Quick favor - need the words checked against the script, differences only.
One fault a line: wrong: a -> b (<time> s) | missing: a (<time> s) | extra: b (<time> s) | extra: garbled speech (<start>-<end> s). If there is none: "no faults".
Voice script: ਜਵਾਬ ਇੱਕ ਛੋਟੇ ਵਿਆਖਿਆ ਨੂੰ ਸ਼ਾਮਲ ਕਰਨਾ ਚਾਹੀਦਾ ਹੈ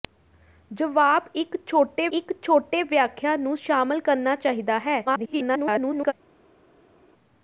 extra: ਇੱਕ ਛੋਟੇ (2.1 s)
extra: garbled speech (5.1-6.1 s)